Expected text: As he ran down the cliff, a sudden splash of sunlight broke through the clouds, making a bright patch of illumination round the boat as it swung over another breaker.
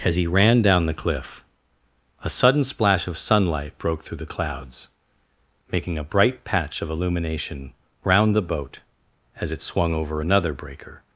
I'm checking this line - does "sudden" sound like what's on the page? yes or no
yes